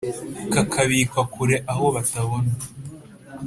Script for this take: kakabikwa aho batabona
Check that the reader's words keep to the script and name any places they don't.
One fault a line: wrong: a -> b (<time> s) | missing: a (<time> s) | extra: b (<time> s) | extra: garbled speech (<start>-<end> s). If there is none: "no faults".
extra: kure (1.3 s)